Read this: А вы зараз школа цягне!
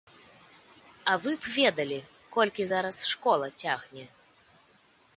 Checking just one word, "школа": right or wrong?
right